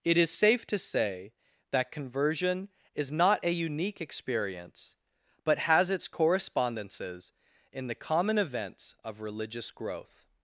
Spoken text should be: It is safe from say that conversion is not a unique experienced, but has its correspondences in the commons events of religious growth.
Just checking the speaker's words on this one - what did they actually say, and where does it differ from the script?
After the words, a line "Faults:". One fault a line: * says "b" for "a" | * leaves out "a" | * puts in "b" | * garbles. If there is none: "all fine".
It is safe to say that conversion is not a unique experience, but has its correspondences in the common events of religious growth.
Faults:
* says "to" for "from"
* says "experience" for "experienced"
* says "common" for "commons"